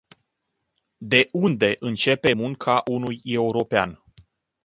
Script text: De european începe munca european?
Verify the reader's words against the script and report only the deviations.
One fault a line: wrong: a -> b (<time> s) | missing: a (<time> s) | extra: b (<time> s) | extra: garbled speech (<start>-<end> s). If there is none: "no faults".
wrong: european -> unde (1.3 s)
extra: unui (2.9 s)